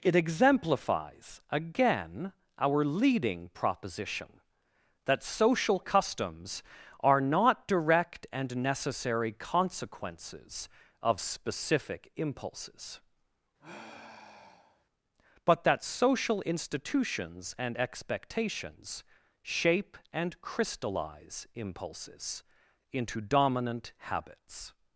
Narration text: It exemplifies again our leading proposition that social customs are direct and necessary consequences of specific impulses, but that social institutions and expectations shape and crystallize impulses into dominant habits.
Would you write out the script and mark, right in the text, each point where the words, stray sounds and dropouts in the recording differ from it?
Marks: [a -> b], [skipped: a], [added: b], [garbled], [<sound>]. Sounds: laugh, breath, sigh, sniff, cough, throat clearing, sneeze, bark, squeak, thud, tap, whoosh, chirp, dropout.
It exemplifies again our leading proposition that social customs are [added: not] direct and necessary consequences of specific impulses, [sigh] but that social institutions and expectations shape and crystallize impulses into dominant habits.